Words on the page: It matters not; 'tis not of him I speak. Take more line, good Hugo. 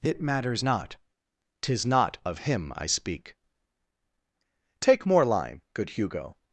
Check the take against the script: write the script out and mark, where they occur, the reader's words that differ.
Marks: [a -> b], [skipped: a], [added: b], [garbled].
It matters not; 'tis not of him I speak. Take more line, good Hugo.